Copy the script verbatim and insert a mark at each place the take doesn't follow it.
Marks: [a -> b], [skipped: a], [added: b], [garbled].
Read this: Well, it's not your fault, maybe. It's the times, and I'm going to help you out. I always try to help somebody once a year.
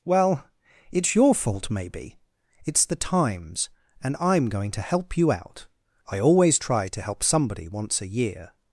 Well, it's [skipped: not] your fault, maybe. It's the times, and I'm going to help you out. I always try to help somebody once a year.